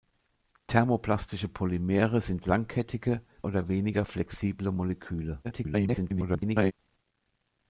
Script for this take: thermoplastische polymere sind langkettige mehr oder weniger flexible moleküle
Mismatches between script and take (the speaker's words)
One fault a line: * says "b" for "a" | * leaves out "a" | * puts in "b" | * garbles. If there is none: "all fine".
* leaves out "mehr"
* garbles